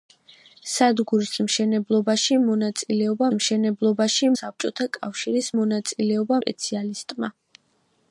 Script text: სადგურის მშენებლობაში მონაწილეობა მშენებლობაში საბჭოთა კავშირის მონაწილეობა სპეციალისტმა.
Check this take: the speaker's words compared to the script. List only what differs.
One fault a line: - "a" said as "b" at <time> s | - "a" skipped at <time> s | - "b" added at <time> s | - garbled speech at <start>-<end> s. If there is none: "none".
none